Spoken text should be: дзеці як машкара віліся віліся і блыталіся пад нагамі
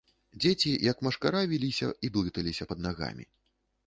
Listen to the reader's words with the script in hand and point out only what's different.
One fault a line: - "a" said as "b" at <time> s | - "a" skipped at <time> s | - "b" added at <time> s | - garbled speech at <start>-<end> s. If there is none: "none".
- "віліся" skipped at 1.9 s